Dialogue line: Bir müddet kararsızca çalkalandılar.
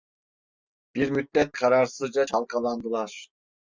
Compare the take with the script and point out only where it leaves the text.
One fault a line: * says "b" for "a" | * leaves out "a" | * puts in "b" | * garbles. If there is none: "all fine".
all fine